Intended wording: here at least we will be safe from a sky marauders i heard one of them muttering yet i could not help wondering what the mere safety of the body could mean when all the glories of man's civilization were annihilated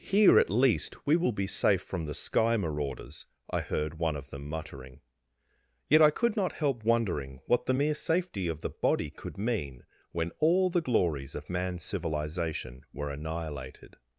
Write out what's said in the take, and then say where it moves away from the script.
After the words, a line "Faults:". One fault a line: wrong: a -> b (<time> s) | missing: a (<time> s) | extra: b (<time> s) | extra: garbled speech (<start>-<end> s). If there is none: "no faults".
here at least we will be safe from the sky marauders i heard one of them muttering yet i could not help wondering what the mere safety of the body could mean when all the glories of man's civilization were annihilated
Faults:
wrong: a -> the (2.0 s)